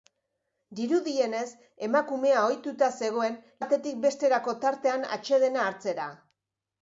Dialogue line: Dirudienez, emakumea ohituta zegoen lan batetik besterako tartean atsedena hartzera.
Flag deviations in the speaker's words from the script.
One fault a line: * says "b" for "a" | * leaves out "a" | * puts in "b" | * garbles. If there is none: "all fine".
* leaves out "lan"